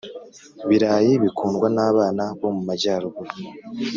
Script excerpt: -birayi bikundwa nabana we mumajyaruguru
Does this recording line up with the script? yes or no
no